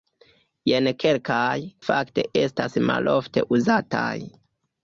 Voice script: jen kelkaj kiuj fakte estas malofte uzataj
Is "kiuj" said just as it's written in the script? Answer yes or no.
no